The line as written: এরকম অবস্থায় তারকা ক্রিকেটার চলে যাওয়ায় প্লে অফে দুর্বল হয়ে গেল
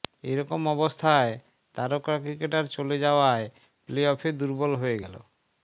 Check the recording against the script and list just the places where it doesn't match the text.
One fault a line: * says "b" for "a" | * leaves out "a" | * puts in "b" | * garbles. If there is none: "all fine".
all fine